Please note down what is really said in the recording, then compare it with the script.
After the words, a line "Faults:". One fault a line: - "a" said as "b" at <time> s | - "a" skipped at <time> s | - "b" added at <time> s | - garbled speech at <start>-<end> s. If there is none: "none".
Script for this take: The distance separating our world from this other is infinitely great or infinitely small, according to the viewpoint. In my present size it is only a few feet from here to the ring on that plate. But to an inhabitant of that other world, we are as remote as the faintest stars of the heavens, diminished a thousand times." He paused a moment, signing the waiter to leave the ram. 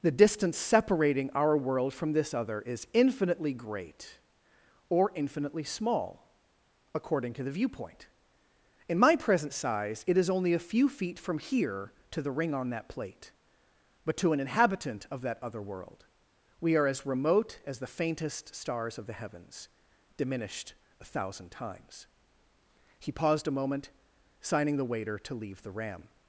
The distance separating our world from this other is infinitely great or infinitely small, according to the viewpoint. In my present size it is only a few feet from here to the ring on that plate. But to an inhabitant of that other world, we are as remote as the faintest stars of the heavens, diminished a thousand times." He paused a moment, signing the waiter to leave the ram.
Faults:
none